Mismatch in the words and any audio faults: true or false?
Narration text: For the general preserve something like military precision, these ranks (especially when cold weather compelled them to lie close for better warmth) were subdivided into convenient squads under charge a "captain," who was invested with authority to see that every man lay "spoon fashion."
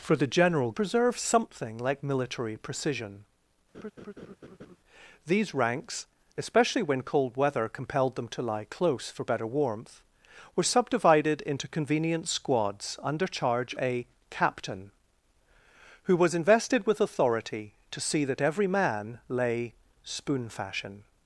true